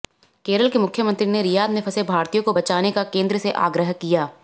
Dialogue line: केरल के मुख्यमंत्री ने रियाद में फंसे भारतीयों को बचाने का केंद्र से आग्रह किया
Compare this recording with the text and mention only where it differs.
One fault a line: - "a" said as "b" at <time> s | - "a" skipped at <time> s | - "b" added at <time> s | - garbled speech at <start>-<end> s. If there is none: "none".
none